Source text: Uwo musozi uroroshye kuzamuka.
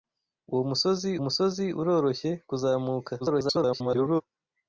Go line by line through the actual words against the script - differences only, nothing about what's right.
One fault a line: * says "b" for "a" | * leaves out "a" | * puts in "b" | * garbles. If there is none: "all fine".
* puts in "musozi"
* garbles